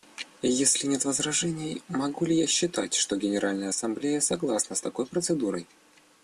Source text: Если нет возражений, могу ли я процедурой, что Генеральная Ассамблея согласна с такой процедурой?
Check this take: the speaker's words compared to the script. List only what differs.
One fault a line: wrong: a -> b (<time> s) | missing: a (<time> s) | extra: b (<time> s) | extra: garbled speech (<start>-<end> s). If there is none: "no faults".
wrong: процедурой -> считать (2.5 s)